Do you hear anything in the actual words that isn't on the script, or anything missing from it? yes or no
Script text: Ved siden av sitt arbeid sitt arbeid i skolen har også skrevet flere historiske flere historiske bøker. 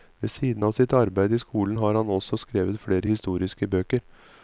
yes